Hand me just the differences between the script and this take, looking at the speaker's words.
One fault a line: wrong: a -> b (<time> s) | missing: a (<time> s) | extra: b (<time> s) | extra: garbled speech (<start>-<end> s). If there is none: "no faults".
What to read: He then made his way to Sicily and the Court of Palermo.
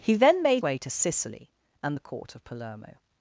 missing: his (0.6 s)